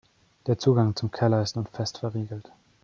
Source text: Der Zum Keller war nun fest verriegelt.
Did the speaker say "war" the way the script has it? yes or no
no